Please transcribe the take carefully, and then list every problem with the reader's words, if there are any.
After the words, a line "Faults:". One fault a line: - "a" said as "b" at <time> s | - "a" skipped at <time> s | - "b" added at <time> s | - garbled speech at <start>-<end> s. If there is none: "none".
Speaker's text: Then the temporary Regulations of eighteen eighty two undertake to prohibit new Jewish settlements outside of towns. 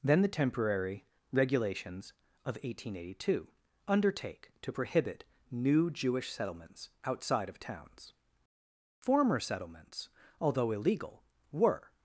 Then the temporary Regulations of eighteen eighty two undertake to prohibit new Jewish settlements outside of towns. Former settlements, although illegal, were
Faults:
- "Former settlements although illegal were" added at 9.0 s